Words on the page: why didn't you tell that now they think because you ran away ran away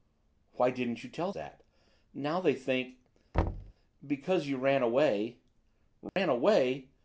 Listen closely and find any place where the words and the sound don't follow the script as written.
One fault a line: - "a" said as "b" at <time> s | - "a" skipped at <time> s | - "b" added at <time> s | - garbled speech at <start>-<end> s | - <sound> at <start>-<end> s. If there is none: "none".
- thud at 3.3-3.7 s
- dropout at 6.1-6.2 s